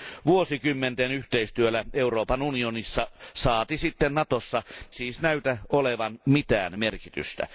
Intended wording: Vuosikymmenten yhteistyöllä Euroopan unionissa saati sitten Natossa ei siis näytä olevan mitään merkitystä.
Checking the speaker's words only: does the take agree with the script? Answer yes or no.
no